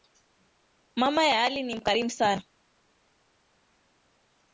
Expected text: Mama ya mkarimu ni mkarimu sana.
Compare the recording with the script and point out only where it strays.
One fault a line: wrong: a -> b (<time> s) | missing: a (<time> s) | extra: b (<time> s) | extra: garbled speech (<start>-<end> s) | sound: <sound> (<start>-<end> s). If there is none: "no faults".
wrong: mkarimu -> ali (1.4 s)